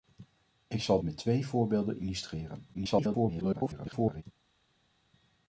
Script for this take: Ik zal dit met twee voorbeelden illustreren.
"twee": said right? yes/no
yes